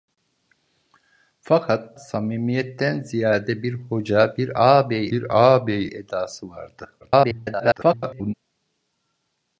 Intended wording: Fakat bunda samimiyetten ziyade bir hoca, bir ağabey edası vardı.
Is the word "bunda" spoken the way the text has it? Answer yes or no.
no